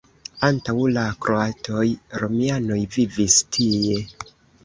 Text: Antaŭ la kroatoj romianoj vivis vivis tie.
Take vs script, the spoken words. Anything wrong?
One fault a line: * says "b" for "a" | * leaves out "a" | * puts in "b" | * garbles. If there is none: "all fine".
* leaves out "vivis"